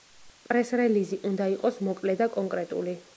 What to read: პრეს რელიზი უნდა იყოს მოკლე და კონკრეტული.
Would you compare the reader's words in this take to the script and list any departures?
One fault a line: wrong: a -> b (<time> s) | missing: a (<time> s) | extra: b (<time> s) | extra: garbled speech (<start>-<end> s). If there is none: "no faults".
no faults